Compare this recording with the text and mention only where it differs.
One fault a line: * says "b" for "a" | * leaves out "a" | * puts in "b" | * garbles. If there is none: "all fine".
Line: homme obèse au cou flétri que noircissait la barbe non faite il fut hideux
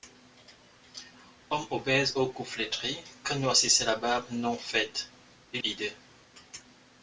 * leaves out "fut"